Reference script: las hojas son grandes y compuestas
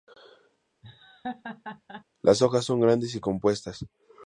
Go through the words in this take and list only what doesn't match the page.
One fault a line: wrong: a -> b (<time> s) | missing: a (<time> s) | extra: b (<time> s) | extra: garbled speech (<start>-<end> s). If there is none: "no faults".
no faults